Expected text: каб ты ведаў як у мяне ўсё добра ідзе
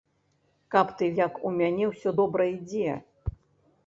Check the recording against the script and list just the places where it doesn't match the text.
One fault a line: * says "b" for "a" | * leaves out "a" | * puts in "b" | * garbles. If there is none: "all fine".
* leaves out "ведаў"